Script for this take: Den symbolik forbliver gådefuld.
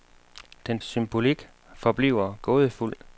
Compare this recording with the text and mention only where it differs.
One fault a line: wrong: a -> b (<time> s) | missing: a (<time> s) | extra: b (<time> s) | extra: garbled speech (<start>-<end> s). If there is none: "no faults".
no faults